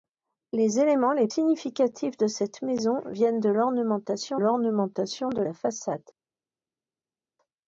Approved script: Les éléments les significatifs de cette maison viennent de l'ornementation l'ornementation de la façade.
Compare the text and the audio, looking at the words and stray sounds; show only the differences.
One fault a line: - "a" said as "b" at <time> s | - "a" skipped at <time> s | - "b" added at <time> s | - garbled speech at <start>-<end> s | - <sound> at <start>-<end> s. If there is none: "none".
none